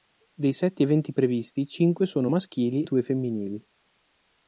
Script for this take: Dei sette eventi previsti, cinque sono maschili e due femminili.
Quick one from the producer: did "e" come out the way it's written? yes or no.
no